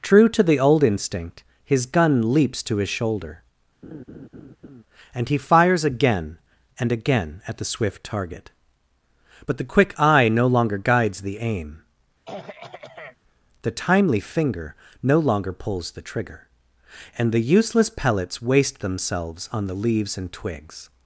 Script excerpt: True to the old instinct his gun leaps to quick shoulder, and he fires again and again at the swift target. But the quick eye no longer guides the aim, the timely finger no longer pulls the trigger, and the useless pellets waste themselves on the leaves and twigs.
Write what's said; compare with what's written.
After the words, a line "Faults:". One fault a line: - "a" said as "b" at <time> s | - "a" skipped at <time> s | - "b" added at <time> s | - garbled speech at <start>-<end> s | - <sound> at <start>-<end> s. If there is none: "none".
True to the old instinct his gun leaps to his shoulder, and he fires again and again at the swift target. But the quick eye no longer guides the aim, the timely finger no longer pulls the trigger, and the useless pellets waste themselves on the leaves and twigs.
Faults:
- "quick" said as "his" at 2.8 s
- laugh at 3.8-4.8 s
- throat clearing at 12.3-13.2 s